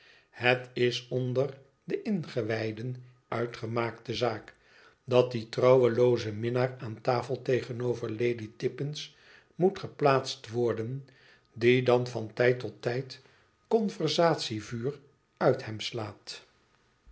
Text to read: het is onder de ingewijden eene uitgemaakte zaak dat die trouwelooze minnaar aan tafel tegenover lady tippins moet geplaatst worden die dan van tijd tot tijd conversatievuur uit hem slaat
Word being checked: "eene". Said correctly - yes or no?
no